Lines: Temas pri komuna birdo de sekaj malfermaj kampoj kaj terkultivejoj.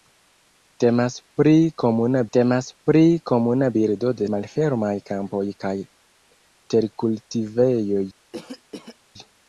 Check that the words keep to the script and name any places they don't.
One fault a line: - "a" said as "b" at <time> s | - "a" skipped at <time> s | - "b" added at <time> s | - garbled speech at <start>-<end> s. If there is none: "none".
- "temas pri komuna" added at 2.4 s
- "sekaj" skipped at 4.3 s